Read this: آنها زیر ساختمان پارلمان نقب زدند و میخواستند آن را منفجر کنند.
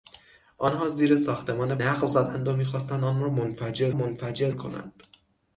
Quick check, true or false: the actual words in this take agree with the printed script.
false